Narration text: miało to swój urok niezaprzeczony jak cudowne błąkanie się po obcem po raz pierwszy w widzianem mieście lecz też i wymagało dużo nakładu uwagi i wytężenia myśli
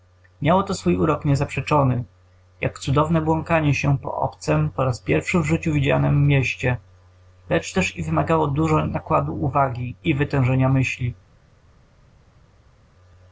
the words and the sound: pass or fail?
fail